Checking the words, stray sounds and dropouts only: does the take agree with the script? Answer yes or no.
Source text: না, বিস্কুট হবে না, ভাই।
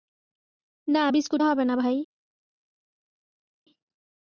yes